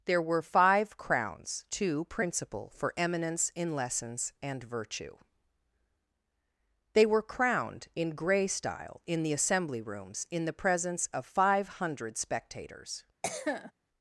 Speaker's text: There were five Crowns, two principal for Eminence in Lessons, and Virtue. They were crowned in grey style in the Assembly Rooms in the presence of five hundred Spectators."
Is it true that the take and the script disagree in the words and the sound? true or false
true